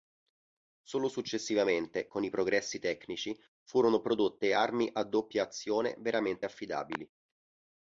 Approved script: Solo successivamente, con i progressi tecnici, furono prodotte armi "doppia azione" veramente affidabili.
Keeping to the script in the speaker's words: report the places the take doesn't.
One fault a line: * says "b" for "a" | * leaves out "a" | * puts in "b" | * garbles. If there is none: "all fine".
* puts in "a"